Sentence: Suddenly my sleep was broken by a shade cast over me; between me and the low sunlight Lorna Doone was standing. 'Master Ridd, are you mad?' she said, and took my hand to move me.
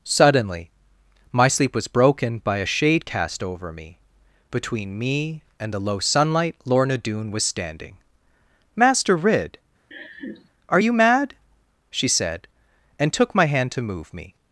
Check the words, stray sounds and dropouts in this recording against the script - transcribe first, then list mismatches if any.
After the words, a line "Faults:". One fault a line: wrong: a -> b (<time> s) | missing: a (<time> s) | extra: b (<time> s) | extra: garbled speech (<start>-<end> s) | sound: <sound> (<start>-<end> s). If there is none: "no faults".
Suddenly my sleep was broken by a shade cast over me; between me and the low sunlight Lorna Doone was standing. 'Master Ridd, are you mad?' she said, and took my hand to move me.
Faults:
sound: laugh (9.9-10.5 s)